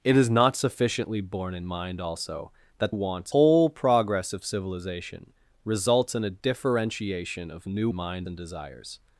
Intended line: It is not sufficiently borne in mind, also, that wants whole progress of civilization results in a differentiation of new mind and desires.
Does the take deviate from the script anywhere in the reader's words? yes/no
no